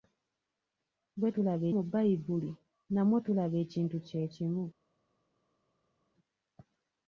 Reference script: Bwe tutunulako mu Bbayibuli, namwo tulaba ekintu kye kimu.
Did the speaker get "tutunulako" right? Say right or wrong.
wrong